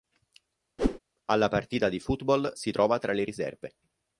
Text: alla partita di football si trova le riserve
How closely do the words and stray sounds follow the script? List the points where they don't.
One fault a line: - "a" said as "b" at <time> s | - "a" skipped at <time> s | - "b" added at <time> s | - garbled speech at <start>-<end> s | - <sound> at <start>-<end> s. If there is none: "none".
- whoosh at 0.8-1.0 s
- "tra" added at 3.0 s